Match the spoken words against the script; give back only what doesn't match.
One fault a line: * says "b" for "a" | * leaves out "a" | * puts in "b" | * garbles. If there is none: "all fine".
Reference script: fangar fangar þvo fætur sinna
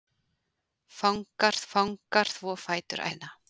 all fine